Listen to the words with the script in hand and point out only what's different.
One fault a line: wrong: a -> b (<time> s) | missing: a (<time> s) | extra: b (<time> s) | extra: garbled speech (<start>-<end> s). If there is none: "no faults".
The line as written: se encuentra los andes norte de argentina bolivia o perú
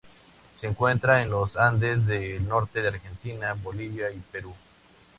extra: en (1.2 s)
extra: del (2.0 s)
wrong: o -> y (4.1 s)